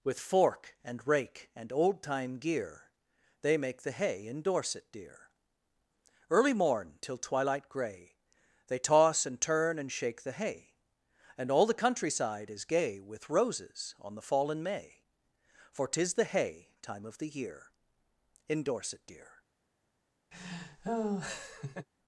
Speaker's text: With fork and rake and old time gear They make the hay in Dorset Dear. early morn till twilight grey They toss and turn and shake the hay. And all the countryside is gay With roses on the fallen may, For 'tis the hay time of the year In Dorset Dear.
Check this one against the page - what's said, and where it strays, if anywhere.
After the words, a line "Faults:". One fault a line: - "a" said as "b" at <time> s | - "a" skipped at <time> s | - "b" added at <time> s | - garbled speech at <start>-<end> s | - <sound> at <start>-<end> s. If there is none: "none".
With fork and rake and old time gear They make the hay in Dorset Dear. early morn till twilight grey They toss and turn and shake the hay. And all the countryside is gay With roses on the fallen may, For 'tis the hay time of the year In Dorset Dear.
Faults:
- laugh at 20.3-21.9 s